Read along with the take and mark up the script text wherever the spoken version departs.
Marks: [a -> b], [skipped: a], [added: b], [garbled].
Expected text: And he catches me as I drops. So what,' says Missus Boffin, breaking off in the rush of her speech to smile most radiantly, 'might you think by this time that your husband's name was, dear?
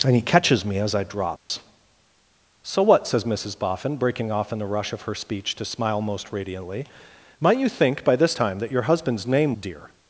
And he catches me as I drops. So what,' says Missus Boffin, breaking off in the rush of her speech to smile most radiantly, 'might you think by this time that your husband's name [skipped: was,] dear?